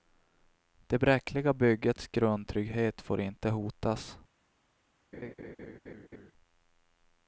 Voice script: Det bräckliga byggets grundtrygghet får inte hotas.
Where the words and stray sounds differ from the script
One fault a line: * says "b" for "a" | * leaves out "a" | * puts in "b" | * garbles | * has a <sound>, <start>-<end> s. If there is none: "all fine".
* has a laugh, 5.1-6.3 s